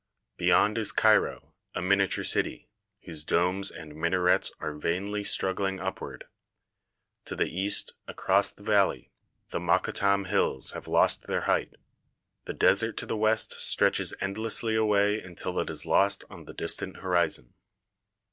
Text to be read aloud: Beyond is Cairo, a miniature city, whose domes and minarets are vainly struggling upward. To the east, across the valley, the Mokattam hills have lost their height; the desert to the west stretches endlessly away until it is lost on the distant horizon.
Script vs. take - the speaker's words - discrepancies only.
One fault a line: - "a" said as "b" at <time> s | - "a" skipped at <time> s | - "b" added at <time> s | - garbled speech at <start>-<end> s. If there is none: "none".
none